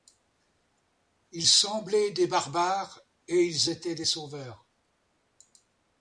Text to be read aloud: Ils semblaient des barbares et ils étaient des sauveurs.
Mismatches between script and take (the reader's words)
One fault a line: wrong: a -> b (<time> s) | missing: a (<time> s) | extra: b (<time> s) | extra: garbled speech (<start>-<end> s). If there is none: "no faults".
no faults